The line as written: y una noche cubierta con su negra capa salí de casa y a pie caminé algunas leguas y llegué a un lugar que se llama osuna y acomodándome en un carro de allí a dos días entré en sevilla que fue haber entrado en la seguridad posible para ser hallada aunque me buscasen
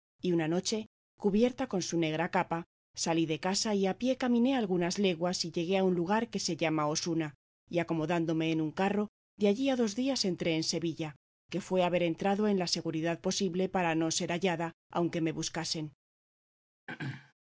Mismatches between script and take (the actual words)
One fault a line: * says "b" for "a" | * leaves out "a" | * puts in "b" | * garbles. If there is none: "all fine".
* puts in "no"